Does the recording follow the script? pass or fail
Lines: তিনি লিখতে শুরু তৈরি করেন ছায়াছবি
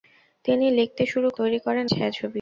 pass